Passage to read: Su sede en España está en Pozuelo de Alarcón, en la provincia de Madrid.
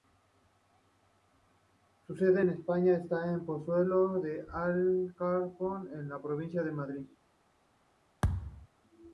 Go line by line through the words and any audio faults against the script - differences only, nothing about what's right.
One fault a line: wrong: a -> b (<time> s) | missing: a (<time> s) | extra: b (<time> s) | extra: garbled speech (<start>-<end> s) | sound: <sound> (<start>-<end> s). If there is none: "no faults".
sound: thud (8.2-8.7 s)